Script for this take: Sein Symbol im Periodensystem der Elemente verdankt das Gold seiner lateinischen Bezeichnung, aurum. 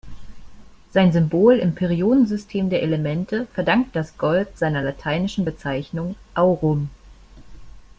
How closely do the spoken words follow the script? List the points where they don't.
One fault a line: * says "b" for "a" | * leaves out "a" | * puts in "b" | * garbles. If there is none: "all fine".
all fine